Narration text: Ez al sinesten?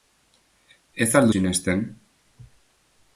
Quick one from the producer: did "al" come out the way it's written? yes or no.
yes